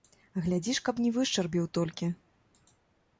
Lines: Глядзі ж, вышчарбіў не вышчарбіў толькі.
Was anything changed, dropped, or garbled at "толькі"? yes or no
no